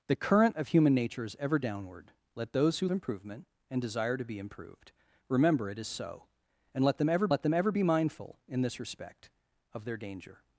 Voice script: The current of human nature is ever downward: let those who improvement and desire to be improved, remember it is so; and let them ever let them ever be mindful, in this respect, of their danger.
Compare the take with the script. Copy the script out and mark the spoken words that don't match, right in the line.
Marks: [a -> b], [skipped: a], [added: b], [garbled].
The current of human nature is ever downward: let those who improvement and desire to be improved, remember it is so; and let them ever let them ever be mindful, in this respect, of their danger.